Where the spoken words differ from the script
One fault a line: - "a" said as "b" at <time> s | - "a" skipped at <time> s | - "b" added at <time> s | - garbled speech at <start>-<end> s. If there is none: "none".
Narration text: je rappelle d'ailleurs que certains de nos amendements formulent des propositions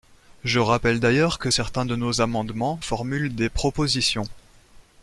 none